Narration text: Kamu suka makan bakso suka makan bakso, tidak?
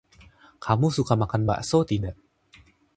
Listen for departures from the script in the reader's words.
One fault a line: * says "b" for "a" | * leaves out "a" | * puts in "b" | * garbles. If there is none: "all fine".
* leaves out "suka makan bakso"